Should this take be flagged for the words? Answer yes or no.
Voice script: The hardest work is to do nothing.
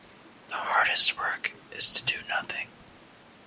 no